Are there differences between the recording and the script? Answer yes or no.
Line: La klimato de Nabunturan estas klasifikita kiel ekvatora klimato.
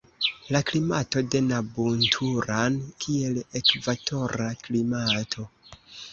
yes